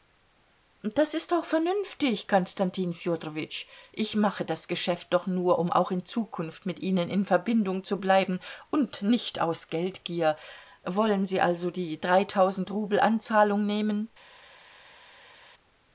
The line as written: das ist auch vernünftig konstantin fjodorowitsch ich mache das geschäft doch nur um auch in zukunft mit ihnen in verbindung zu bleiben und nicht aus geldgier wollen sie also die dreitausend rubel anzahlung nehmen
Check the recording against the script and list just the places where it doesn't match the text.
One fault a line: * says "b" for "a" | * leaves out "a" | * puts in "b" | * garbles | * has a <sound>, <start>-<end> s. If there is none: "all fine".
all fine